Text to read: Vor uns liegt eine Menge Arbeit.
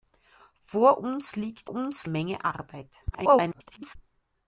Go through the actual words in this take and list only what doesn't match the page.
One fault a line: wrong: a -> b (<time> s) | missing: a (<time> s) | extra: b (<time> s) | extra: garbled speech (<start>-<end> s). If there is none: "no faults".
wrong: eine -> uns (1.7 s)
extra: garbled speech (3.1-4.0 s)